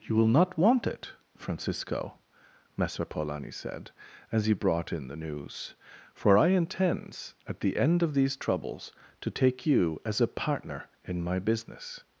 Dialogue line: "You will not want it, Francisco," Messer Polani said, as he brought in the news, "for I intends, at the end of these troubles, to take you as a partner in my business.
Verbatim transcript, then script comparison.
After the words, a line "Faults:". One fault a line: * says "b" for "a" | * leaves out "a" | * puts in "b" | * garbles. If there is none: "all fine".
"You will not want it, Francisco," Messer Polani said, as he brought in the news, "for I intends, at the end of these troubles, to take you as a partner in my business.
Faults:
all fine